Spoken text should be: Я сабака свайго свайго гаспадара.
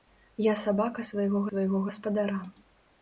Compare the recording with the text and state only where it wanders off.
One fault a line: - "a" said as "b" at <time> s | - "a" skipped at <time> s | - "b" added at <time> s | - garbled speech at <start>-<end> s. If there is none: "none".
none